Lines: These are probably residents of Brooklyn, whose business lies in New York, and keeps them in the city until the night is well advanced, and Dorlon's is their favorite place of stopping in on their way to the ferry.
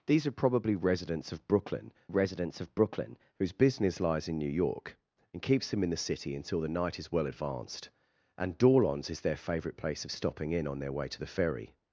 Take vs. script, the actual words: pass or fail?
fail